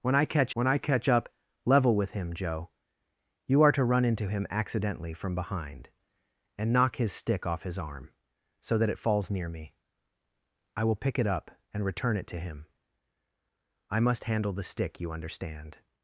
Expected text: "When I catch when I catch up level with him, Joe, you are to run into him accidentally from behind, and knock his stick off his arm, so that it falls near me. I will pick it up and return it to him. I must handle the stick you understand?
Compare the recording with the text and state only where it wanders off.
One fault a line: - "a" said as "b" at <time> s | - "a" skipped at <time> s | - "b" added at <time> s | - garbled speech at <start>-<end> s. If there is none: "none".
none